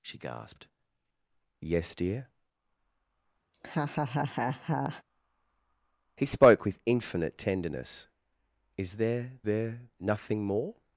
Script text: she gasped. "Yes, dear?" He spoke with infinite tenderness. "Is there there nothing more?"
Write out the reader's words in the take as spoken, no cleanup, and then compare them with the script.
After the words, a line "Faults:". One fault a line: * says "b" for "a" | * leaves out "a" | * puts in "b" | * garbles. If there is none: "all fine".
she gasped. "Yes, dear?" He spoke with infinite tenderness. "Is there there nothing more?"
Faults:
all fine